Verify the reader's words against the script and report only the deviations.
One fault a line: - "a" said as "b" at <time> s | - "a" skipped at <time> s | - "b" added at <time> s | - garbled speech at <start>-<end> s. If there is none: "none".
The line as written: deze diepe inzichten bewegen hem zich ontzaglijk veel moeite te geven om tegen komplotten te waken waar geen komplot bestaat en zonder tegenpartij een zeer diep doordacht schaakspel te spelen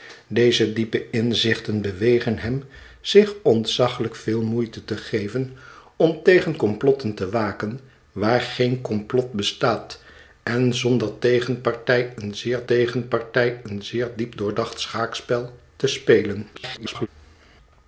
- "tegenpartij een zeer" added at 12.6 s
- garbled speech at 16.5-17.1 s